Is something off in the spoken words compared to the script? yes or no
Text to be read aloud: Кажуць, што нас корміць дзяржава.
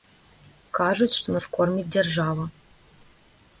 no